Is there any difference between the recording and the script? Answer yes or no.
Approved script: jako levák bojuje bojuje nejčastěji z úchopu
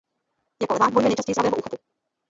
yes